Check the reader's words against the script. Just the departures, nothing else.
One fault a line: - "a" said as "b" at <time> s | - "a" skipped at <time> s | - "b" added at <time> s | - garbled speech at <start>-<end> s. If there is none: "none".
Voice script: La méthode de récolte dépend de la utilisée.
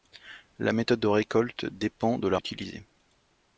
none